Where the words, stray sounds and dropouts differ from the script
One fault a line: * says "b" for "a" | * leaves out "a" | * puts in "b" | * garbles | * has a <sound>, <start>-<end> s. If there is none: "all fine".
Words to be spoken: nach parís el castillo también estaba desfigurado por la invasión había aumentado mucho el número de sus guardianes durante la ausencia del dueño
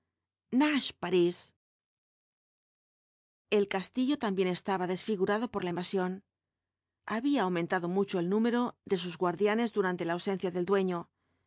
all fine